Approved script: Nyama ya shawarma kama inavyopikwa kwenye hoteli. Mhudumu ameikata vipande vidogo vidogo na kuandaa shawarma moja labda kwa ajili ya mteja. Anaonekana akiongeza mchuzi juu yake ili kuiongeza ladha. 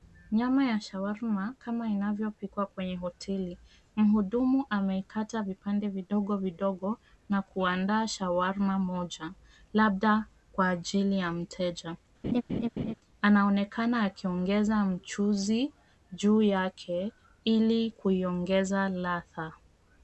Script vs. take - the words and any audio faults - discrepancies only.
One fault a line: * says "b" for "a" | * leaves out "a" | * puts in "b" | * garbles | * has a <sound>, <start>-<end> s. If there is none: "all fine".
* has a laugh, 12.2-12.9 s